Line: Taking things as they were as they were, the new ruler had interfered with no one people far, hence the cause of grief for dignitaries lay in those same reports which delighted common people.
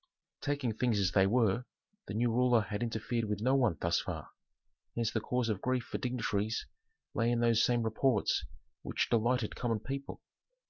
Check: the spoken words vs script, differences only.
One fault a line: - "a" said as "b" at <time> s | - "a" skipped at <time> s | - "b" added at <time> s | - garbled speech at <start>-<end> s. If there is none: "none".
- "as they were" skipped at 1.6 s
- "people" said as "thus" at 3.8 s